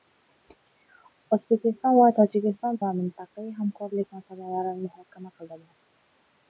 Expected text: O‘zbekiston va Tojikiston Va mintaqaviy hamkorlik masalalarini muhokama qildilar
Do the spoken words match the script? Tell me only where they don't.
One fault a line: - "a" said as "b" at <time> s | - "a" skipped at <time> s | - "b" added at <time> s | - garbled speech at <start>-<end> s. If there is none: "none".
none